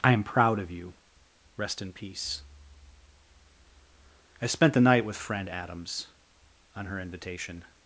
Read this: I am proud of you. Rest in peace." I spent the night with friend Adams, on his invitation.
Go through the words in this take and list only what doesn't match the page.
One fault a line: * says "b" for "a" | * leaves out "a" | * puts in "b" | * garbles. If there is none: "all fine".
* says "her" for "his"